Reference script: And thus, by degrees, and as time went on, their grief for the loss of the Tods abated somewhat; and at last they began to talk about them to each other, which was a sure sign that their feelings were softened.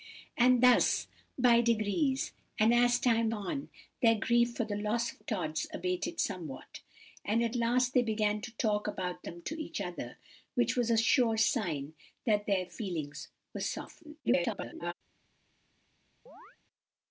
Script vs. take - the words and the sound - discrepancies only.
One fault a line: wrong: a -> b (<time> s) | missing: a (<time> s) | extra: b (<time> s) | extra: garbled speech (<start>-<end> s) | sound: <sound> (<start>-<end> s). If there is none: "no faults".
missing: went (3.3 s)
missing: the (5.2 s)
extra: garbled speech (14.2-14.9 s)
sound: chirp (16.3-16.6 s)